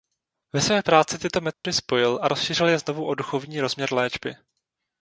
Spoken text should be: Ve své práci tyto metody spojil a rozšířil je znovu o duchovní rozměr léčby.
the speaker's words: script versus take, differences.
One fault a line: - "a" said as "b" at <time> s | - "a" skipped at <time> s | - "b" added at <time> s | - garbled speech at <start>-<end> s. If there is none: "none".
none